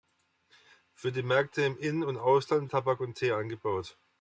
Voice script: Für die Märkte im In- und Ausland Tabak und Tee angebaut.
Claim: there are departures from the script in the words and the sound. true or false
false